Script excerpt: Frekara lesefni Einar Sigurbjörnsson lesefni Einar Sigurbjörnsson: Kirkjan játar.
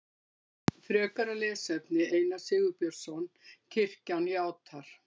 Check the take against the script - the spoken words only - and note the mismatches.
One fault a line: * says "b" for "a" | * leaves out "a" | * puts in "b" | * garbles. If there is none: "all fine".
* leaves out "lesefni Einar Sigurbjörnsson"